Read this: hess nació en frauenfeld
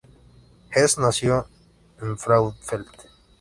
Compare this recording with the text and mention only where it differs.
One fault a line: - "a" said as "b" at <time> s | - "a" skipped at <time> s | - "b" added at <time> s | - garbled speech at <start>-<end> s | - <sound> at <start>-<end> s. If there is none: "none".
none